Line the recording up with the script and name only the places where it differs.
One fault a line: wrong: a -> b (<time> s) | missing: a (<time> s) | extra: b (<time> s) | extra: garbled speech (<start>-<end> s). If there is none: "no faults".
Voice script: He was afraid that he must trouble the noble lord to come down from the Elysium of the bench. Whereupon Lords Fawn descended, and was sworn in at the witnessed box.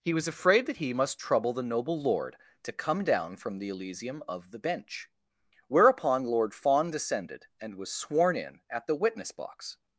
wrong: Lords -> Lord (6.2 s)
wrong: witnessed -> witness (9.0 s)